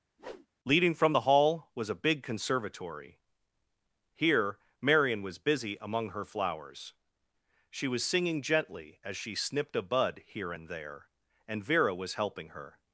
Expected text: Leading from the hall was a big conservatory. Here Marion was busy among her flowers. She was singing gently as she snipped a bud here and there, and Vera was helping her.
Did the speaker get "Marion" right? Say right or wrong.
right